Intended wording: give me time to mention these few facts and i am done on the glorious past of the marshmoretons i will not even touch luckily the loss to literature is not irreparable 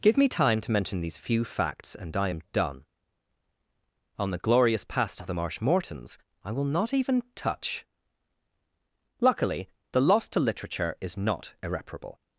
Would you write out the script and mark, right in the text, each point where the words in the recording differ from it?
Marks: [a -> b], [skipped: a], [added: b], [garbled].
give me time to mention these few facts and i am done on the glorious past of the marshmoretons i will not even touch luckily the loss to literature is not irreparable